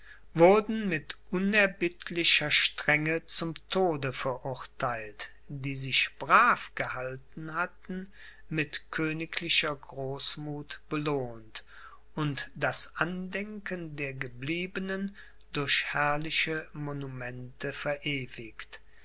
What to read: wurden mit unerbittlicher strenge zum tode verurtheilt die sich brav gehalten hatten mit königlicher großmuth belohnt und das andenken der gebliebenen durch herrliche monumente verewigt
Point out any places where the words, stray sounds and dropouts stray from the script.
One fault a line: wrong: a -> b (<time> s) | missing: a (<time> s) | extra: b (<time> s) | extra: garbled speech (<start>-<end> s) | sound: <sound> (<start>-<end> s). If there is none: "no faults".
no faults